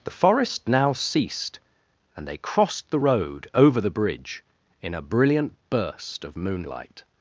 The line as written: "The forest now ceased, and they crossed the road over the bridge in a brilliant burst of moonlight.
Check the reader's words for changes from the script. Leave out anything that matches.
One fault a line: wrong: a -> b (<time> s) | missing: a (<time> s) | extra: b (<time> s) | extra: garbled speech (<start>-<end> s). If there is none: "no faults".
no faults